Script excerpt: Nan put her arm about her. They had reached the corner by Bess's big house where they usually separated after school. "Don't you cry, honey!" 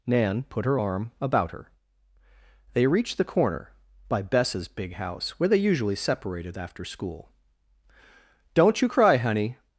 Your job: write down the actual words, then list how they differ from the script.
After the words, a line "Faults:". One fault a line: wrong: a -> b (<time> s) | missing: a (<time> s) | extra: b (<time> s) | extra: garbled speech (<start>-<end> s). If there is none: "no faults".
Nan put her arm about her. They reached the corner by Bess's big house where they usually separated after school. "Don't you cry, honey!"
Faults:
missing: had (2.9 s)